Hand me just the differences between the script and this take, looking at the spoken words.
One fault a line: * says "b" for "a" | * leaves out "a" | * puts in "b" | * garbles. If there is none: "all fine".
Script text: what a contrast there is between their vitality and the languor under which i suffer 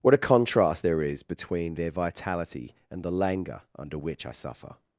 all fine